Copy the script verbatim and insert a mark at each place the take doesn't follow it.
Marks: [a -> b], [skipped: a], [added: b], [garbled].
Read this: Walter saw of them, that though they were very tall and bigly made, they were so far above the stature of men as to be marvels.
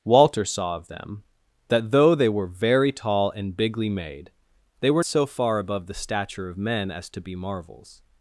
Walter saw of them, that though they were very tall and bigly made, they were so far above the stature of men as to be marvels.